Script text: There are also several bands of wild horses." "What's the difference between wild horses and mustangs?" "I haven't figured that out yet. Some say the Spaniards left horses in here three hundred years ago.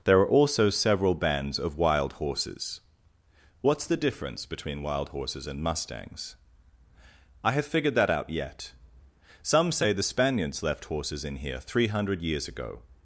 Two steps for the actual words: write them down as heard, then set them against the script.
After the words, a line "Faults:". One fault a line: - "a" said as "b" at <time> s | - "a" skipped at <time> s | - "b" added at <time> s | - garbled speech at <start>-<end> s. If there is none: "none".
There are also several bands of wild horses." "What's the difference between wild horses and mustangs?" "I have figured that out yet. Some say the Spaniards left horses in here three hundred years ago.
Faults:
- "haven't" said as "have" at 7.5 s